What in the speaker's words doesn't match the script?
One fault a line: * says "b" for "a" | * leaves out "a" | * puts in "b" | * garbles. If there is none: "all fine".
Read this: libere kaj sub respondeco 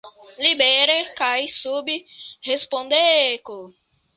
all fine